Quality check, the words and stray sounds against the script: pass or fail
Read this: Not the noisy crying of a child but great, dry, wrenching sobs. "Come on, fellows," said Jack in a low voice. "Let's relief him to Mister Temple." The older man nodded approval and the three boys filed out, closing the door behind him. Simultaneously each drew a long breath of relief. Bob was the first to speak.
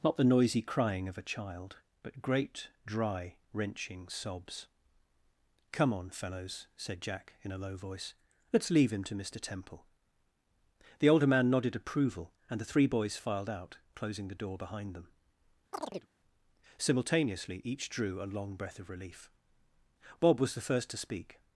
fail